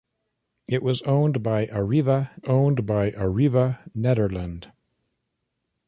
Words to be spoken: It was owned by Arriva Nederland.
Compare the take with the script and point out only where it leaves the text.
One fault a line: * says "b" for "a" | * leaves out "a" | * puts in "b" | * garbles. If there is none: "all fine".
* puts in "owned by Arriva"